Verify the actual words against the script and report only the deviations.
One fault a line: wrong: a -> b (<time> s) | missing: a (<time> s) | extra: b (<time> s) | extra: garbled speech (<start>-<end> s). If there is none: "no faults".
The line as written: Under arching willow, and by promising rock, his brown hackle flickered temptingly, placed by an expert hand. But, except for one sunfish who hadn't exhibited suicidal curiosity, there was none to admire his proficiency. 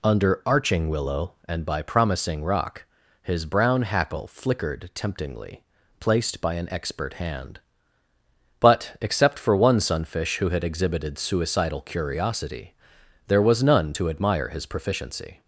wrong: hadn't -> had (10.5 s)